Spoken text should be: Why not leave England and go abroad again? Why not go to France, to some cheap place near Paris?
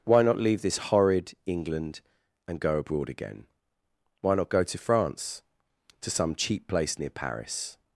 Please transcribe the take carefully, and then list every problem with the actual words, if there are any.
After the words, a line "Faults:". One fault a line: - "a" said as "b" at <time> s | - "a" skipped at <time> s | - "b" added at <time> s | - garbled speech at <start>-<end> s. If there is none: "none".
Why not leave this horrid England and go abroad again? Why not go to France, to some cheap place near Paris?
Faults:
- "this horrid" added at 0.6 s